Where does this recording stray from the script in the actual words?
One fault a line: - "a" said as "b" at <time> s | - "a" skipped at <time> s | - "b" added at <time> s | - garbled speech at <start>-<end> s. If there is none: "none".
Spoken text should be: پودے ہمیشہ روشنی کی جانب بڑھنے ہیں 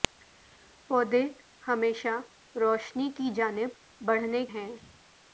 none